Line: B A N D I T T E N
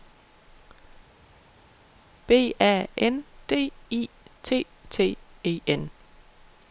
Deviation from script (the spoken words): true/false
false